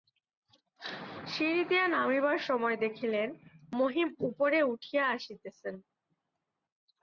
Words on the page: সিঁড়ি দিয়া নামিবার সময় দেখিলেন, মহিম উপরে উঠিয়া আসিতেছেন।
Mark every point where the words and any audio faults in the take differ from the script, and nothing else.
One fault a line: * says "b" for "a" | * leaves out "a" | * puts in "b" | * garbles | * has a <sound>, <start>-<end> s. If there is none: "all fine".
all fine